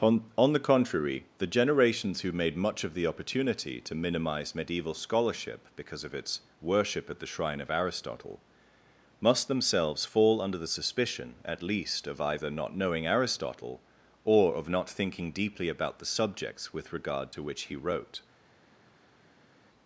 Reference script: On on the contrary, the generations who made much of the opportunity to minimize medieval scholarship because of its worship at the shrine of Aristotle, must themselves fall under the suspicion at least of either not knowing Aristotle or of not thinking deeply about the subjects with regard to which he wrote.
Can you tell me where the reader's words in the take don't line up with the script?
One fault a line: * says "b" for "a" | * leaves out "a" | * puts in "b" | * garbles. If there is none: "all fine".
all fine